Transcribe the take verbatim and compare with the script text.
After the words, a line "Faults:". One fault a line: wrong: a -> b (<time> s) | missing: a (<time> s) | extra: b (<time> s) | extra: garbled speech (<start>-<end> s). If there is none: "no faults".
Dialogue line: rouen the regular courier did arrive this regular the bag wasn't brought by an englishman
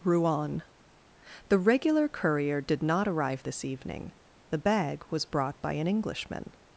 rouen the regular courier did not arrive this evening the bag was brought by an englishman
Faults:
extra: not (2.8 s)
wrong: regular -> evening (3.6 s)
wrong: wasn't -> was (5.1 s)